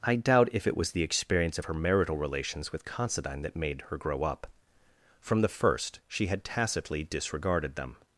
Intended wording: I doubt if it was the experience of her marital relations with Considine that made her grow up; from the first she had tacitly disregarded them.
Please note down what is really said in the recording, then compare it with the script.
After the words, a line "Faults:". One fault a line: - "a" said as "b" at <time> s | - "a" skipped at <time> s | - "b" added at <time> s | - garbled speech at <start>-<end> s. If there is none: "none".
I doubt if it was the experience of her marital relations with Considine that made her grow up; from the first she had tacitly disregarded them.
Faults:
none